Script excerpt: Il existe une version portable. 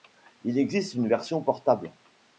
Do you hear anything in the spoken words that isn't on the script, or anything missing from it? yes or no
no